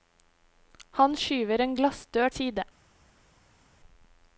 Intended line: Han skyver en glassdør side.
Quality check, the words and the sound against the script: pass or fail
pass